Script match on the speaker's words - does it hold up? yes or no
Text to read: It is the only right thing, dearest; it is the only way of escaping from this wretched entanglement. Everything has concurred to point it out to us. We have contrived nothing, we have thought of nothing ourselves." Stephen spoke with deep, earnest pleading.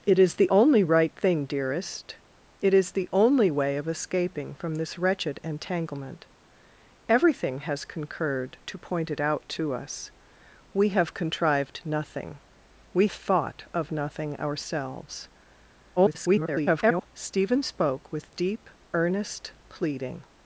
no